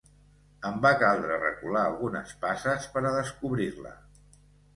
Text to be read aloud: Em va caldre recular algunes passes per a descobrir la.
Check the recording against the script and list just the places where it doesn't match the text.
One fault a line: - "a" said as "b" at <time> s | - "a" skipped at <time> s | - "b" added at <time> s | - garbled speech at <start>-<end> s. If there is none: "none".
none